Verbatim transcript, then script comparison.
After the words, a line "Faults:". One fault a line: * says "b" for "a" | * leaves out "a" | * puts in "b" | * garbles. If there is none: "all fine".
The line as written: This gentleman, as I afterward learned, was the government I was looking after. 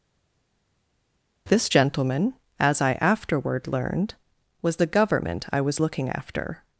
This gentleman, as I afterward learned, was the government I was looking after.
Faults:
all fine